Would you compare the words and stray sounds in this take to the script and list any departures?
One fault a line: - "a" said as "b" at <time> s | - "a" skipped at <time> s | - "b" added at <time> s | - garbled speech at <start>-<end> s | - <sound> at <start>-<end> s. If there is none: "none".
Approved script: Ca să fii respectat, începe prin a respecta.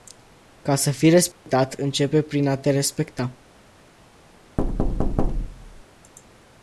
- dropout at 1.3-1.5 s
- "te" added at 2.6 s
- thud at 4.6-5.8 s